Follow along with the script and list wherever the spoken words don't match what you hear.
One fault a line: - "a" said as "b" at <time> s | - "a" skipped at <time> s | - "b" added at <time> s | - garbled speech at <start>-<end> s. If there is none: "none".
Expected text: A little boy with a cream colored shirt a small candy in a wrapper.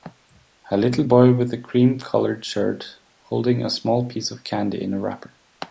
- "holding" added at 3.2 s
- "piece of" added at 4.1 s